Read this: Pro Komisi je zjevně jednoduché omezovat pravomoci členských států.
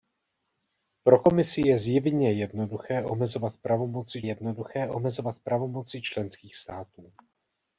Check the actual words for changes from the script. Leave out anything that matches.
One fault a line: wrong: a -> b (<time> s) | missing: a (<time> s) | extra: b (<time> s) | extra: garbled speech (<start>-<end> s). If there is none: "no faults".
extra: jednoduché omezovat pravomoci (4.2 s)